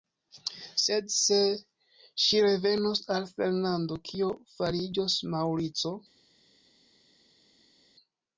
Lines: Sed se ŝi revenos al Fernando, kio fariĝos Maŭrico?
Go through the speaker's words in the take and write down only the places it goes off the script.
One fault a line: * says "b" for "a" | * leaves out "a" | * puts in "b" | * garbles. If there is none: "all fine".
all fine